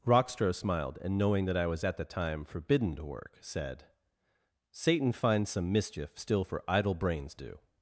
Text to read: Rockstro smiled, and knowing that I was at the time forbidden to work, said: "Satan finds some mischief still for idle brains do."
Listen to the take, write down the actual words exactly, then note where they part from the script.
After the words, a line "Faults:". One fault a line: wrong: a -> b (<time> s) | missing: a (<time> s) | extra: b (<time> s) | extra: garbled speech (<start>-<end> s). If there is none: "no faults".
Rockstro smiled, and knowing that I was at the time forbidden to work, said: "Satan finds some mischief still for idle brains do."
Faults:
no faults